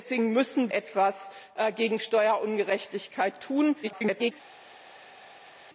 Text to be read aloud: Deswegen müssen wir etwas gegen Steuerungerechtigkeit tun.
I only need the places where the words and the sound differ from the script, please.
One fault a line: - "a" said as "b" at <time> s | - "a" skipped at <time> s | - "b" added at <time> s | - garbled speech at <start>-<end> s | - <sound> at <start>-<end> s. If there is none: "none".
- "wir" skipped at 0.7 s
- garbled speech at 3.8-4.3 s